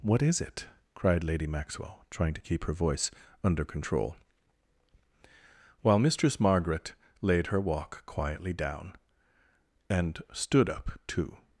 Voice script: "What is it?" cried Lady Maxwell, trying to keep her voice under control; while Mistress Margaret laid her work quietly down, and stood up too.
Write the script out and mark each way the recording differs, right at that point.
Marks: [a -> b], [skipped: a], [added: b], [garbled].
"What is it?" cried Lady Maxwell, trying to keep her voice under control; while Mistress Margaret laid her [work -> walk] quietly down, and stood up too.